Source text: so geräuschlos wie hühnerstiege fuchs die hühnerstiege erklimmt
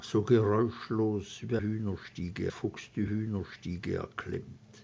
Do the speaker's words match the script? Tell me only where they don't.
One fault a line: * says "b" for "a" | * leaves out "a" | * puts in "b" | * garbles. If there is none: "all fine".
all fine